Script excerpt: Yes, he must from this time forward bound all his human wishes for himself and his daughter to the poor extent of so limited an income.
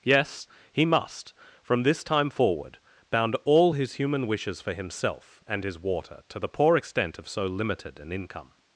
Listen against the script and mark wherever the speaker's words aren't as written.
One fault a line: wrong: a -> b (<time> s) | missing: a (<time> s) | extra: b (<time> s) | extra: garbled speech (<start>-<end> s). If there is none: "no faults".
wrong: daughter -> water (5.8 s)